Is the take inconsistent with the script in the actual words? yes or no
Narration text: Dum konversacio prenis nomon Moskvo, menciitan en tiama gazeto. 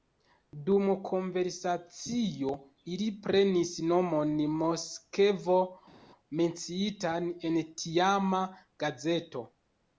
yes